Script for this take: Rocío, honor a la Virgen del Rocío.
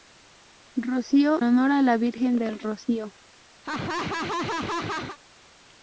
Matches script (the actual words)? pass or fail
pass